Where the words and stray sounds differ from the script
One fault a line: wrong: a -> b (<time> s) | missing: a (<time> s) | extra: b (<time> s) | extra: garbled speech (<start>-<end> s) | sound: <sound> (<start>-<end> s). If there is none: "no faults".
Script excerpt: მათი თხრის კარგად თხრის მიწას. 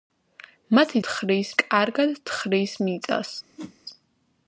sound: whoosh (3.6-3.8 s)